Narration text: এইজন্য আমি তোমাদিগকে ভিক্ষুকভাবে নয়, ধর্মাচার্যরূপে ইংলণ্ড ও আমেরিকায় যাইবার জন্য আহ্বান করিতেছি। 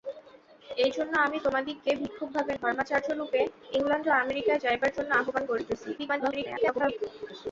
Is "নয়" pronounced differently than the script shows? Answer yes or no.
yes